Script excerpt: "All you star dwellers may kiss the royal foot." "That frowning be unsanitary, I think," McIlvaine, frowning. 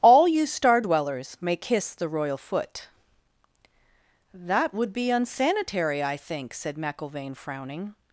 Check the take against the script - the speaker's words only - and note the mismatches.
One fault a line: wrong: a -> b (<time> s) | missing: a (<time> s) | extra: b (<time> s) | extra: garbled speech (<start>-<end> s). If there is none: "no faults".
wrong: frowning -> would (4.7 s)
extra: said (6.5 s)